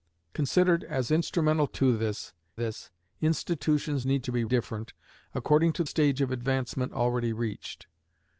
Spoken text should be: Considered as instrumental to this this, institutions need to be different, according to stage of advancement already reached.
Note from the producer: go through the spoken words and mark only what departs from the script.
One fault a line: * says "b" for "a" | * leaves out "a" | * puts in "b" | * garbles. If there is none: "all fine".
all fine